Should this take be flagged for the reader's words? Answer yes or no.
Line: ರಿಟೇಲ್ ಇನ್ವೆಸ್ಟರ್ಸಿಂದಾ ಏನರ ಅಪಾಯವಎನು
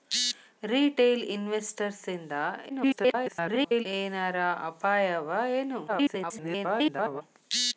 yes